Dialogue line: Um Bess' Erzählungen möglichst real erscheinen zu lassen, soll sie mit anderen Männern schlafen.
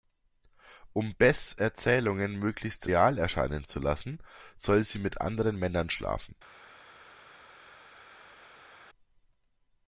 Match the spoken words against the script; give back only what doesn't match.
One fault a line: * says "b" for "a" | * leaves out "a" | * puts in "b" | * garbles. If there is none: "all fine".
all fine